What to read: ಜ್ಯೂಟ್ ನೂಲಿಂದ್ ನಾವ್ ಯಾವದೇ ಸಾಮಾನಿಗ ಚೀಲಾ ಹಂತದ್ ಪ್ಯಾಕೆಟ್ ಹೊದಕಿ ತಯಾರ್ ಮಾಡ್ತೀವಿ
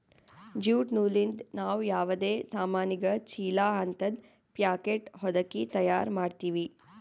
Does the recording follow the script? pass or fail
pass